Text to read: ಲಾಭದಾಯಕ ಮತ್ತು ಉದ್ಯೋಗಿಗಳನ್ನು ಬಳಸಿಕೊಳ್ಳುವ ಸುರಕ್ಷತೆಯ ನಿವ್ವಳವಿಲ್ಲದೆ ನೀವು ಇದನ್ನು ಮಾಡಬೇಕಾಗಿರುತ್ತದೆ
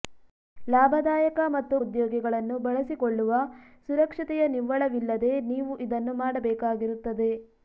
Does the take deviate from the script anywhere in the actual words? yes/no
no